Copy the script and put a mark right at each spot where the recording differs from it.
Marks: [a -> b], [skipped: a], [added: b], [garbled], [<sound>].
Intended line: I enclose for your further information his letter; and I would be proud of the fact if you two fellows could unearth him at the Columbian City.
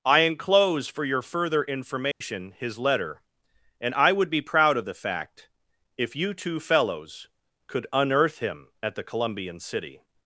I enclose for your further information [dropout] his letter; and I would be proud of the fact if you two fellows could unearth him at the Columbian City.